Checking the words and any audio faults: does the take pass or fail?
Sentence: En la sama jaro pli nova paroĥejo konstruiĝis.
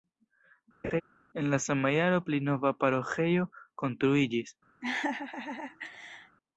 fail